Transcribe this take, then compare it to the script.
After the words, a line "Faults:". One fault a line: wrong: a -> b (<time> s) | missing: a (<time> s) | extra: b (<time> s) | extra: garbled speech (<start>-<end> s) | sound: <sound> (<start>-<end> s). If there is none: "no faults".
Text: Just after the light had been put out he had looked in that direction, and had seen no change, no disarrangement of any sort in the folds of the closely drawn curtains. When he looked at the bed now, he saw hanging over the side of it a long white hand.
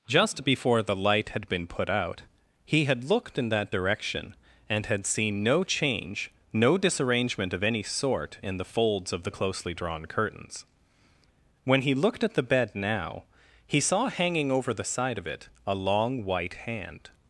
Just before the light had been put out he had looked in that direction, and had seen no change, no disarrangement of any sort in the folds of the closely drawn curtains. When he looked at the bed now, he saw hanging over the side of it a long white hand.
Faults:
wrong: after -> before (0.4 s)